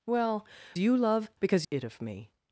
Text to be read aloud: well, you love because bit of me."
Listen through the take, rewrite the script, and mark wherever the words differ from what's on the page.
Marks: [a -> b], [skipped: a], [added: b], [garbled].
well, you love because bit of me."